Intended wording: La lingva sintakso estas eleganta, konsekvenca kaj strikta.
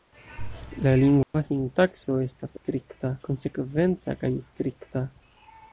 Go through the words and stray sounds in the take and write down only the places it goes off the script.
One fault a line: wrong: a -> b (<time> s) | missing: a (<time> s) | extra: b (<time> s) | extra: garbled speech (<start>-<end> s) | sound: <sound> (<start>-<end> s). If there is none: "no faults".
sound: dropout (1.2-1.3 s)
wrong: eleganta -> strikta (2.6 s)